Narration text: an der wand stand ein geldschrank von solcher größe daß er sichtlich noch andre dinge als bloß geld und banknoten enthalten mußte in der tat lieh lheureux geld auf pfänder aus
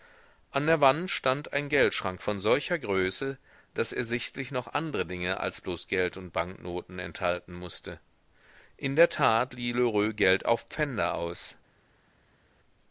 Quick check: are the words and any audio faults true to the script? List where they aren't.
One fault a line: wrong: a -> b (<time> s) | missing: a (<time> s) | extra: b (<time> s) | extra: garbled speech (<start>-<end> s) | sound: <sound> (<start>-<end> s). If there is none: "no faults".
no faults